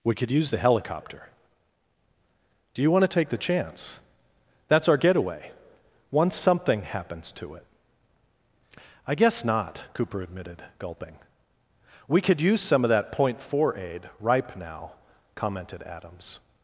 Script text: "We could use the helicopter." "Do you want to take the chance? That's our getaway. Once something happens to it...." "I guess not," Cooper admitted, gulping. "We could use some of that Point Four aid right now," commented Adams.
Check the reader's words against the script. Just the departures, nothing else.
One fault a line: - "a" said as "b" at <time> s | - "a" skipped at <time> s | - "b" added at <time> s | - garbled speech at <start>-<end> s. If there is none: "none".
- "right" said as "ripe" at 14.2 s